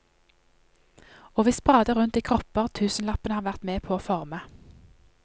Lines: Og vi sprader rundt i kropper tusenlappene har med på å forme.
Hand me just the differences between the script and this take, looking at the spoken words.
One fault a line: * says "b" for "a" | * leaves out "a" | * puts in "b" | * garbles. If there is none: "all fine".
* puts in "vært"